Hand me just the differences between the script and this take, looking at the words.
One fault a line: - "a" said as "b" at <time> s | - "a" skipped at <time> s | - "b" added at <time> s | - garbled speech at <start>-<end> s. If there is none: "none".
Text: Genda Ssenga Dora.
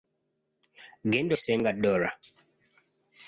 none